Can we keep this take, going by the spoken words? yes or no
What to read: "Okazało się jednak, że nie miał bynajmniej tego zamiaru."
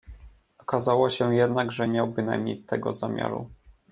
no